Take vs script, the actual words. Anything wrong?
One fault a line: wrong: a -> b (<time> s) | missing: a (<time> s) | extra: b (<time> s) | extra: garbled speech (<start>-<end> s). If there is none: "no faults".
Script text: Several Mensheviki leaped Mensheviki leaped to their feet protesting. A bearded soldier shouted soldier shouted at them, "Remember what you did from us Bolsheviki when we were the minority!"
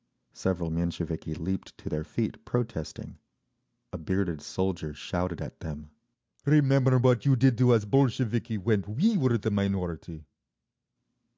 missing: Mensheviki leaped (1.8 s)
missing: soldier shouted (5.4 s)
wrong: from -> to (7.6 s)